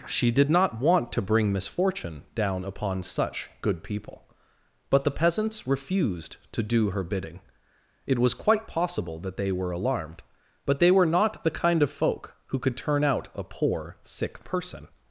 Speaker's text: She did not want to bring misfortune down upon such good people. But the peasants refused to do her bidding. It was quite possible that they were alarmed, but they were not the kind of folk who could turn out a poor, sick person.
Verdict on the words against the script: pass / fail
pass